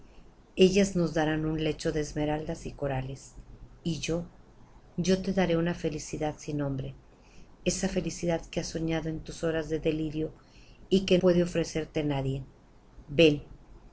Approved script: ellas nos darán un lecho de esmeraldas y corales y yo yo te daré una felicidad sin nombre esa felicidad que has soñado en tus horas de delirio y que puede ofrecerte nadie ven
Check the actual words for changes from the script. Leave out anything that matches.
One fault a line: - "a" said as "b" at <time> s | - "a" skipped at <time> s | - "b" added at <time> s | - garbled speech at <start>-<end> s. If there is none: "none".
none